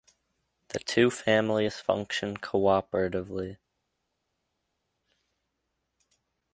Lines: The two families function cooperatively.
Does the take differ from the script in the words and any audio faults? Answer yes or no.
no